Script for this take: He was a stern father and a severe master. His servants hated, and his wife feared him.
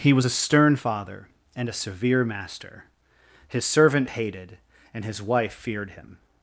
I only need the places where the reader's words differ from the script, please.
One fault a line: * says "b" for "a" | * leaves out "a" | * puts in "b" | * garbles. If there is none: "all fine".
* says "servant" for "servants"